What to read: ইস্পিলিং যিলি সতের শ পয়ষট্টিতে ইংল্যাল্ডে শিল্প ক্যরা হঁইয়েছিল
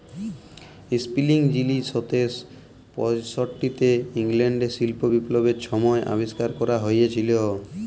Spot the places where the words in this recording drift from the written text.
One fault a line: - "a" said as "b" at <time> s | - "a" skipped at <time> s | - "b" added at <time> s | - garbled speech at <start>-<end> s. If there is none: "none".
- "বিপ্লবের ছময় আবিষ্কার" added at 5.1 s